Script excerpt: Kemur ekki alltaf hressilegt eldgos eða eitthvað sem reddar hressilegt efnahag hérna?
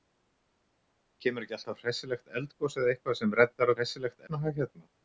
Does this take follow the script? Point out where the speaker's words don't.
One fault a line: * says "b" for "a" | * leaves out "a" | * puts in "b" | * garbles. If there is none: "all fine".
all fine